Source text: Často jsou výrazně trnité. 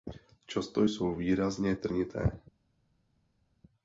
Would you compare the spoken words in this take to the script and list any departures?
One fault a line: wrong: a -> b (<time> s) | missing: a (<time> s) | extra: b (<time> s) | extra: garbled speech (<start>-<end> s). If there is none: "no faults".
no faults